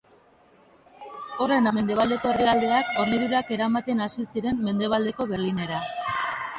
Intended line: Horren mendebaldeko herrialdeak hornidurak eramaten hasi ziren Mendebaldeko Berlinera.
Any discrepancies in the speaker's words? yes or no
no